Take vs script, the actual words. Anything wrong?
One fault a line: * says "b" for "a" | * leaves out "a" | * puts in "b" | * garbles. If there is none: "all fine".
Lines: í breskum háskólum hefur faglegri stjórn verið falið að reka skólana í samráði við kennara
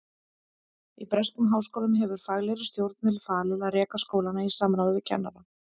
all fine